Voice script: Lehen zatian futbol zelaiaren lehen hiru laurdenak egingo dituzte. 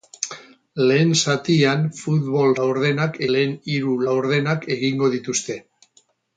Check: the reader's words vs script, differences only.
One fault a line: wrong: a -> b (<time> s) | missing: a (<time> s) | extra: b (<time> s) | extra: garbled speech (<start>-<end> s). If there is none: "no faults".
wrong: zelaiaren -> laurdenak (2.6 s)